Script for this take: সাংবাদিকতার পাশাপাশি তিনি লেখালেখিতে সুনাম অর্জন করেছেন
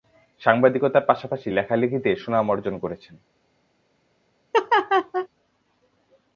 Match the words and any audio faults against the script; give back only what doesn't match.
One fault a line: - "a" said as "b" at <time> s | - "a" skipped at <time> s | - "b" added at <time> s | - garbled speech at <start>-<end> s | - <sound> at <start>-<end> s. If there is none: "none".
- "তিনি" skipped at 1.5 s
- laugh at 4.5-5.3 s